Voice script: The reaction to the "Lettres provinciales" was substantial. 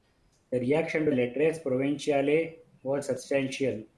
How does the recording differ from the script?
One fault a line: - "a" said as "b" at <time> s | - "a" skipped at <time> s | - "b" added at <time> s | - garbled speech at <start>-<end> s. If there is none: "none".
- "the" skipped at 1.1 s